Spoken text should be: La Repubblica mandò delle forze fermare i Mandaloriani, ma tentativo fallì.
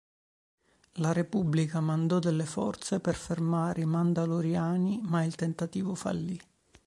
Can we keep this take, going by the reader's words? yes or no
no